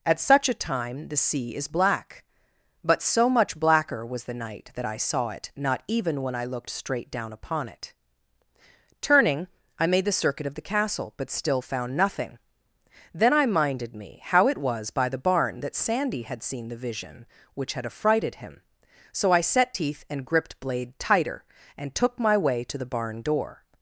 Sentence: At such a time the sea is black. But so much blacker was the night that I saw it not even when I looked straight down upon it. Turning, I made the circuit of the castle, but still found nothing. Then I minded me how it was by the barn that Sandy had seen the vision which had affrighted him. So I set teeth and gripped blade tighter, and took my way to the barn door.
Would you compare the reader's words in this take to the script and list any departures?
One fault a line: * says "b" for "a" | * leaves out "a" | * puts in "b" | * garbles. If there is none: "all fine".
all fine